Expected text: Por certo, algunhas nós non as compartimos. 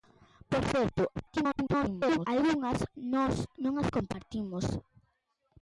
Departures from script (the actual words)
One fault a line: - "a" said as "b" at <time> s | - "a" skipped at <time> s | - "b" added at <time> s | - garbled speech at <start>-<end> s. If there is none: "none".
- garbled speech at 1.1-2.3 s